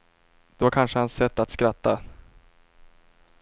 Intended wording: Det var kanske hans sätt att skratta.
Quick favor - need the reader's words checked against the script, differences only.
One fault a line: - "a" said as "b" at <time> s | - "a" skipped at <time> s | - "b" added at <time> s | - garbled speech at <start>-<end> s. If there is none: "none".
none